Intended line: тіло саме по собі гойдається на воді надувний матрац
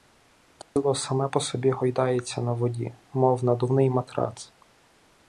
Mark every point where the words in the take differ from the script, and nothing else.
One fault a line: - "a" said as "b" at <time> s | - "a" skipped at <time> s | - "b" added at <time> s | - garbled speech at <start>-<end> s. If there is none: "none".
- "мов" added at 3.1 s